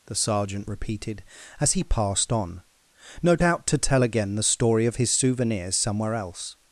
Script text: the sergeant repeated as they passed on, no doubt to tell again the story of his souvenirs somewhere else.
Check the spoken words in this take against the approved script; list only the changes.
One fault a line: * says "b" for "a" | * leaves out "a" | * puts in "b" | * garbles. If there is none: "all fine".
* says "he" for "they"